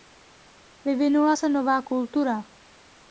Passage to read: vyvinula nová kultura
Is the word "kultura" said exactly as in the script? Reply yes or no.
yes